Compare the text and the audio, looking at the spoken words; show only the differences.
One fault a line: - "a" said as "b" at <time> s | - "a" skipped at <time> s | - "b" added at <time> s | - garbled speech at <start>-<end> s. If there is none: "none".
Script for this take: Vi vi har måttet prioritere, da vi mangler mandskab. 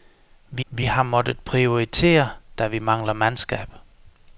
none